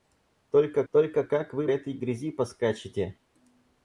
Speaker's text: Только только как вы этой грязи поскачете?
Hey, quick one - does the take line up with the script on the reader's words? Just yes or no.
yes